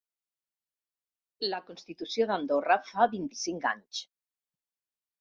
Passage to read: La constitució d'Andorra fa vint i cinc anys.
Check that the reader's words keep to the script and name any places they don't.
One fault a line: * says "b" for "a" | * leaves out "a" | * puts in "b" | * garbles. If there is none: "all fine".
all fine